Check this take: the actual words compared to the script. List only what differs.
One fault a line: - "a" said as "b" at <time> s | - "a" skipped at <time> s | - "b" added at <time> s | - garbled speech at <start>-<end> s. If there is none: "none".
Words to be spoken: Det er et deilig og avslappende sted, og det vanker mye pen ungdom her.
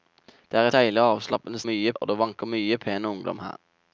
- "et" skipped at 0.7 s
- "sted" said as "mye" at 1.7 s